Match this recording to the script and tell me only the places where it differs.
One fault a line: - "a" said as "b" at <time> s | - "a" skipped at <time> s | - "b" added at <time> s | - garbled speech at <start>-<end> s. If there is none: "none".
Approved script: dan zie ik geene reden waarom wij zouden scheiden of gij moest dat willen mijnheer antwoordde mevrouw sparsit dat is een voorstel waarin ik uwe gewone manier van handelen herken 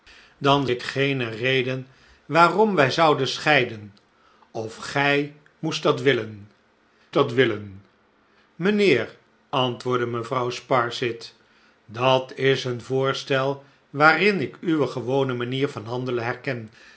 - "zie" skipped at 0.7 s
- "dat willen" added at 7.1 s